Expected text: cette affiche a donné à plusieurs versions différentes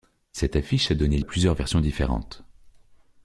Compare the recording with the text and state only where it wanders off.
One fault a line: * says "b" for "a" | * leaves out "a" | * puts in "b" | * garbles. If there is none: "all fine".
all fine